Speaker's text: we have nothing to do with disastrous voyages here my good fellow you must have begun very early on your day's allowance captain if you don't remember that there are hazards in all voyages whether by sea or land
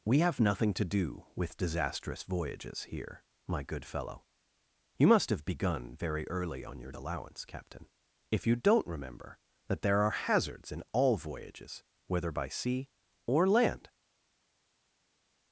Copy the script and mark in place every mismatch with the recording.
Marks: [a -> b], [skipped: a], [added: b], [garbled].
we have nothing to do with disastrous voyages here my good fellow you must have begun very early on your [skipped: day's] allowance captain if you don't remember that there are hazards in all voyages whether by sea or land